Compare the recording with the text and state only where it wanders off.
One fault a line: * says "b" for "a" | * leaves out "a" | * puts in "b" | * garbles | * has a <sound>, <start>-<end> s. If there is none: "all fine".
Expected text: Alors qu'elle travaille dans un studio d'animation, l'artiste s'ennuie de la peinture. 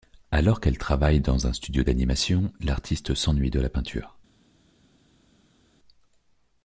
all fine